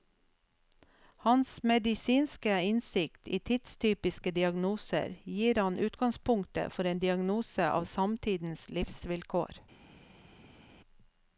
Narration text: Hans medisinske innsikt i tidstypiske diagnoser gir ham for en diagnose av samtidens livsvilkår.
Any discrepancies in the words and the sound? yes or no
yes